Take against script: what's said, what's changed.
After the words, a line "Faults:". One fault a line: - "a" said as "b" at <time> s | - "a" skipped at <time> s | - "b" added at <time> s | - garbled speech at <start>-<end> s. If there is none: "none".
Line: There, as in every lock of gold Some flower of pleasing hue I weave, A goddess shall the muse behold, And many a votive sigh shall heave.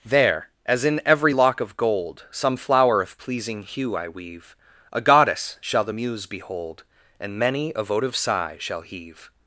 There, as in every lock of gold Some flower of pleasing hue I weave, A goddess shall the muse behold, And many a votive sigh shall heave.
Faults:
none